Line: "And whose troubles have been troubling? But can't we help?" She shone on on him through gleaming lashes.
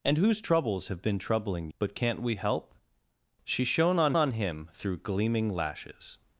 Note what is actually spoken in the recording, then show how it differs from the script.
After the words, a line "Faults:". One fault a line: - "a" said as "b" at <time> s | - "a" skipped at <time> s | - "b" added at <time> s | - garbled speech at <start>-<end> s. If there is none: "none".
"And whose troubles have been troubling? But can't we help?" She shone on on him through gleaming lashes.
Faults:
none